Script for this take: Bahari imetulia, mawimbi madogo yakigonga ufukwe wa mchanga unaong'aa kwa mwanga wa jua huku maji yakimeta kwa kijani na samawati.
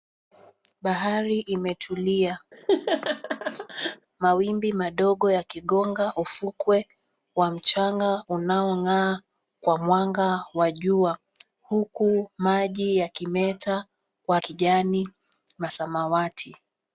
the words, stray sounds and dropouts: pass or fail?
fail